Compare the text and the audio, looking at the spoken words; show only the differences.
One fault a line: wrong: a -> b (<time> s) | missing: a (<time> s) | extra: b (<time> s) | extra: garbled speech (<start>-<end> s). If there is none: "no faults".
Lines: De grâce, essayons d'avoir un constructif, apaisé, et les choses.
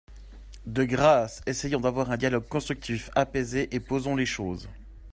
extra: dialogue (2.2 s)
extra: posons (3.8 s)